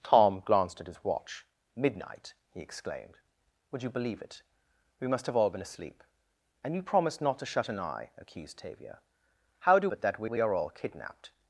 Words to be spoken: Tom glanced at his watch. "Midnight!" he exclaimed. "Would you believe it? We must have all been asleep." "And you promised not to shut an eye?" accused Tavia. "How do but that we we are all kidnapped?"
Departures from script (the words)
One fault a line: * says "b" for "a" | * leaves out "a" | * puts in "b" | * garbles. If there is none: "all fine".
all fine